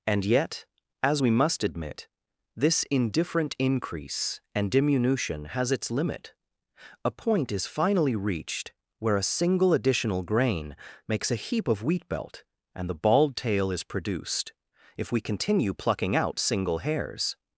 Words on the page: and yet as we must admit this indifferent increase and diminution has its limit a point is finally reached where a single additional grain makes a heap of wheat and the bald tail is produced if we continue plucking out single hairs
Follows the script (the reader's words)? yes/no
no